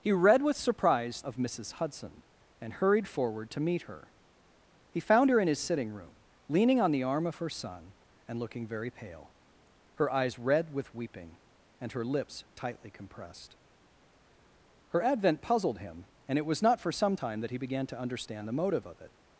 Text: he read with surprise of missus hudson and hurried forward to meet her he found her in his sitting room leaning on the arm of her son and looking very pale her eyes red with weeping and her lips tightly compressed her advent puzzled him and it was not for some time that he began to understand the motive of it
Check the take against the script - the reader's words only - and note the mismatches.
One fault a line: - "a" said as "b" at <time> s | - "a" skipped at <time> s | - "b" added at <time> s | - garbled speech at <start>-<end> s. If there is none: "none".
none